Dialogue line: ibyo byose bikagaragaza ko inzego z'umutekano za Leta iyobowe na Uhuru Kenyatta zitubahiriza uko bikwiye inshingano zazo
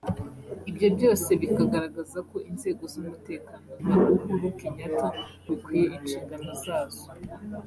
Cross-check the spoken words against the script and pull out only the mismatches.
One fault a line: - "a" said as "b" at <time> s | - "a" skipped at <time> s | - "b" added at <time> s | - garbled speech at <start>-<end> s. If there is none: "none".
- "za Leta iyobowe" skipped at 3.7 s
- "zitubahiriza uko" skipped at 5.1 s